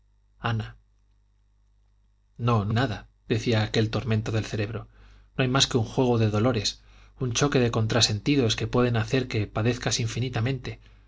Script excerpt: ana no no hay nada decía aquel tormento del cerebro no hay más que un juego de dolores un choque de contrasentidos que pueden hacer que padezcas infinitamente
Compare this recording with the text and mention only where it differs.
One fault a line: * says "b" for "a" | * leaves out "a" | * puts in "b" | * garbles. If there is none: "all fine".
* leaves out "hay"